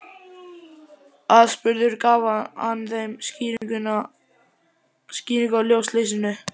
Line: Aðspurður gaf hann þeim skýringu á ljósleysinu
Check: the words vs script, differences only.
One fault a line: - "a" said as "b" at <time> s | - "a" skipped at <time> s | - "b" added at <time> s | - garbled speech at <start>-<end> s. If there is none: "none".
none